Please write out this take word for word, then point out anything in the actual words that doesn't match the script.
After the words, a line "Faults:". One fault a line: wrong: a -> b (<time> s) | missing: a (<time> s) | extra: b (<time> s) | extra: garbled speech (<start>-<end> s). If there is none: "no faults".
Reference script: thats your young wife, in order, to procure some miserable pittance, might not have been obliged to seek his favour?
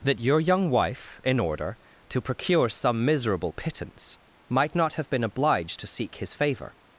that your young wife, in order, to procure some miserable pittance, might not have been obliged to seek his favour?
Faults:
wrong: thats -> that (0.0 s)